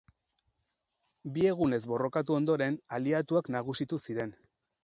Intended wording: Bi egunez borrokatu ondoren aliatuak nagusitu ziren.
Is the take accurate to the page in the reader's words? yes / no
yes